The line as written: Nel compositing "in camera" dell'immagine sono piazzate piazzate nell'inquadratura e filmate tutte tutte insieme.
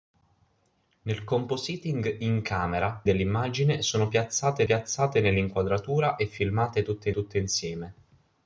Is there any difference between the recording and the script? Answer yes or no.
no